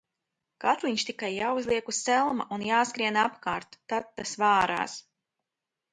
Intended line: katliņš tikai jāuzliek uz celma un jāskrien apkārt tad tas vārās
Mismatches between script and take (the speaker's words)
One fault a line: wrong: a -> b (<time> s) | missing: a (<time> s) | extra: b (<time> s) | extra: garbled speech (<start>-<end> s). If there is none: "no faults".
no faults